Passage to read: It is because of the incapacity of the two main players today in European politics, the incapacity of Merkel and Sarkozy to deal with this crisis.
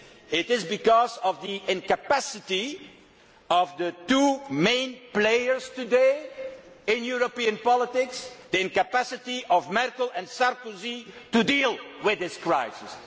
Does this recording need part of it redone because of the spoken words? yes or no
no